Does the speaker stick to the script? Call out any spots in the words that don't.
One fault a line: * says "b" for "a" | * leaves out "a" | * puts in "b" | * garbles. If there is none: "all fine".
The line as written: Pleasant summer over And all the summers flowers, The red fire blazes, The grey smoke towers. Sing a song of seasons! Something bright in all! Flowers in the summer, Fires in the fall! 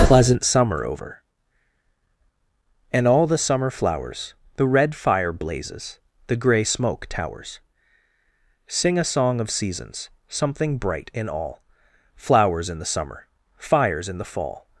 * says "summer" for "summers"